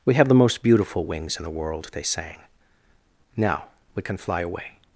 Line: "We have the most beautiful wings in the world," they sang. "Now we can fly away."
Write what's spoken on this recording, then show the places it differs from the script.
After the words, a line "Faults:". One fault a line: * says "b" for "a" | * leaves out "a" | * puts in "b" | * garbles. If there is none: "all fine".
"We have the most beautiful wings in the world," they sang. "Now we can fly away."
Faults:
all fine